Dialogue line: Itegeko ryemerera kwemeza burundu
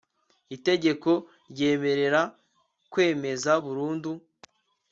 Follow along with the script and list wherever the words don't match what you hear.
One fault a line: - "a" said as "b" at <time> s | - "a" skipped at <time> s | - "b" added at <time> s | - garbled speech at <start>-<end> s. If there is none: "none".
none